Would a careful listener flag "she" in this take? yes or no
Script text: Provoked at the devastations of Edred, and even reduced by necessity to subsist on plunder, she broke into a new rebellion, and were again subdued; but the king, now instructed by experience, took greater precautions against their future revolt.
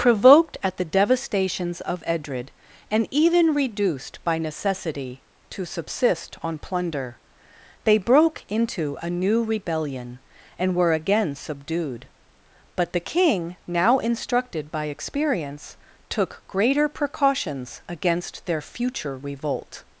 yes